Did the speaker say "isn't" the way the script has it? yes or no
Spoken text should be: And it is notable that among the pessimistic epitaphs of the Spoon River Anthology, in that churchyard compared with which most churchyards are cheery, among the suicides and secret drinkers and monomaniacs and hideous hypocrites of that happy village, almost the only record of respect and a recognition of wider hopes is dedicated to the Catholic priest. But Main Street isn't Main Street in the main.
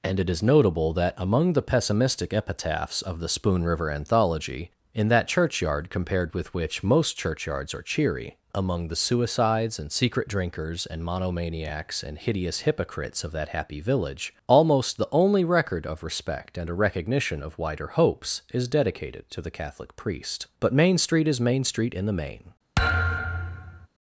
no